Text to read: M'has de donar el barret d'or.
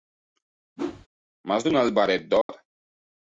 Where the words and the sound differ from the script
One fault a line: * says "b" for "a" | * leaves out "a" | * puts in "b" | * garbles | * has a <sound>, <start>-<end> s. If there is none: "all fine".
* has a whoosh, 0.8-1.1 s
* has a dropout, 2.4-2.5 s